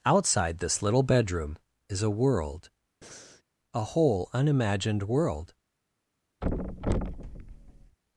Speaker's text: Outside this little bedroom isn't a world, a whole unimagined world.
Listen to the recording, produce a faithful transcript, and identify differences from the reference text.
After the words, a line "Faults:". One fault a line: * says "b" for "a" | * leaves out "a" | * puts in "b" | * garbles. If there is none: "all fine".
Outside this little bedroom is a world, a whole unimagined world.
Faults:
* says "is" for "isn't"